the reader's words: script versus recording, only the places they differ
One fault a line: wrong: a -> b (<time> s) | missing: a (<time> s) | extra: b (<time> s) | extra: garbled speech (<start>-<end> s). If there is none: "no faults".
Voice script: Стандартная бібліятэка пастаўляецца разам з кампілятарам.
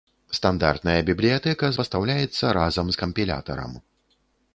no faults